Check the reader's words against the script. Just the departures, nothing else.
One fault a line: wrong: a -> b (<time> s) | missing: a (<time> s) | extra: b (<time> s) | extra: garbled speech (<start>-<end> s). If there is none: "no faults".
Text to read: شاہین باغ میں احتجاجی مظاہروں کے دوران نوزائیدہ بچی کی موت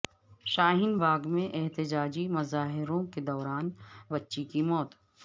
missing: نوزائیدہ (3.7 s)